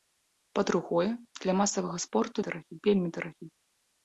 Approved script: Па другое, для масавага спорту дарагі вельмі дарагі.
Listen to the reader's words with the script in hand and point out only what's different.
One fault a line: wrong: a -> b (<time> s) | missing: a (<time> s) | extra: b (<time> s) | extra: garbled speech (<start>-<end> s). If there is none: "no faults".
no faults